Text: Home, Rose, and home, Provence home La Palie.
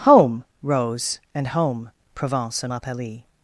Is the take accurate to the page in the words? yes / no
no